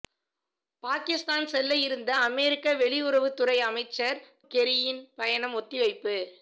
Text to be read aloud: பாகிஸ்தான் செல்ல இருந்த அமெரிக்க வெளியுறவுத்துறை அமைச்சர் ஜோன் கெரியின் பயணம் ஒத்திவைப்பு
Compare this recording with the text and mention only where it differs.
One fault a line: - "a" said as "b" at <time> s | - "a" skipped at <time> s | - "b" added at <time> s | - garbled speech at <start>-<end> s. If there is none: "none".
- "ஜோன்" skipped at 4.2 s